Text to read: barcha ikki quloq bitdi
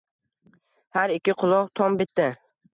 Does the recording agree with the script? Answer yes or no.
no